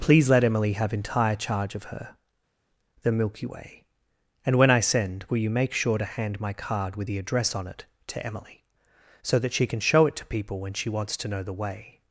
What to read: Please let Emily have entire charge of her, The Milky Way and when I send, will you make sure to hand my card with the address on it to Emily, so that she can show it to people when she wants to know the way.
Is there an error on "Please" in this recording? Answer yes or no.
no